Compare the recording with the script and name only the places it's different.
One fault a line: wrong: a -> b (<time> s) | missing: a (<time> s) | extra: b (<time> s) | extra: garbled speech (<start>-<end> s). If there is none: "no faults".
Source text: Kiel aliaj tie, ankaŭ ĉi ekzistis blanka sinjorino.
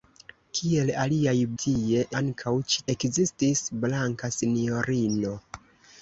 no faults